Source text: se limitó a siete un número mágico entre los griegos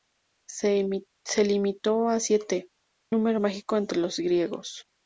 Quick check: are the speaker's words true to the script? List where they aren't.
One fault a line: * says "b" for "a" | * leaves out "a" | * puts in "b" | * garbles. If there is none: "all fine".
* leaves out "un"